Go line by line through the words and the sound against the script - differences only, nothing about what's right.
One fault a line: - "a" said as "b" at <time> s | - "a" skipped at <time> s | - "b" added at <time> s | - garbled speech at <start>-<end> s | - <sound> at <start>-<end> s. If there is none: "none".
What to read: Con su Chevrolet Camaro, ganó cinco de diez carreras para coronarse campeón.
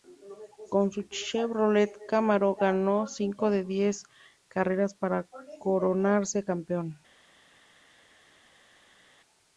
none